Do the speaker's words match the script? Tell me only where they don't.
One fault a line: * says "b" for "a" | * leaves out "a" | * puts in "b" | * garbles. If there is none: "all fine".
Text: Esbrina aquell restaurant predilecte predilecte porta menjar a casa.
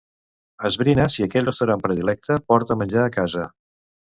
* puts in "si"
* leaves out "predilecte"